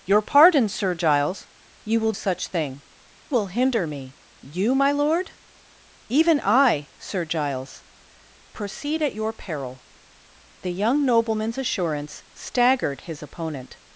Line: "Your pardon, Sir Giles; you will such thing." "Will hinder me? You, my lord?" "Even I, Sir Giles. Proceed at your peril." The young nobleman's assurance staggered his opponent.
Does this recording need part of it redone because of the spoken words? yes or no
no